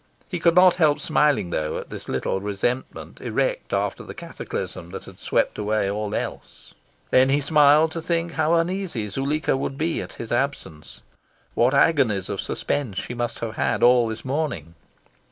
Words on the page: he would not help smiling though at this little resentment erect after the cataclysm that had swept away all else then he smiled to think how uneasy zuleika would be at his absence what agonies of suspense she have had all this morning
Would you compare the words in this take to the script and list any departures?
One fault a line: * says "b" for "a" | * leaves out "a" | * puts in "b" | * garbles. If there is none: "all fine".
* says "could" for "would"
* puts in "must"